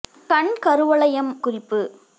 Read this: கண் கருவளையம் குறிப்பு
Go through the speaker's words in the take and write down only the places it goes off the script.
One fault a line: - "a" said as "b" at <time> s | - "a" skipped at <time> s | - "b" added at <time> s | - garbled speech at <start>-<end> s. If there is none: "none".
none